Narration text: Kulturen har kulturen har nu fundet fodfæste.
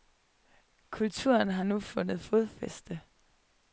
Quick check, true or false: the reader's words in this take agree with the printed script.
false